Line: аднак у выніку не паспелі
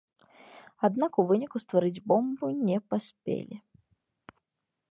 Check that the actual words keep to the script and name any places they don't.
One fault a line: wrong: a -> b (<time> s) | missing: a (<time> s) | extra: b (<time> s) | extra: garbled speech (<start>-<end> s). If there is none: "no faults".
extra: стварыць бомбу (1.6 s)